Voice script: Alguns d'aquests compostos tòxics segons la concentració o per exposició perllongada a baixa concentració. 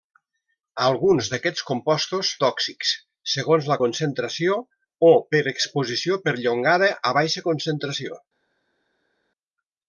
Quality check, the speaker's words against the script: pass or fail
pass